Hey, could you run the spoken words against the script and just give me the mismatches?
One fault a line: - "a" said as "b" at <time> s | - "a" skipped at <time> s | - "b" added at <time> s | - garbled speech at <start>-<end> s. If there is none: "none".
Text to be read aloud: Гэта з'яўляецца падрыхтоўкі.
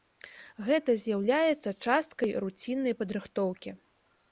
- "часткай руціннай" added at 1.9 s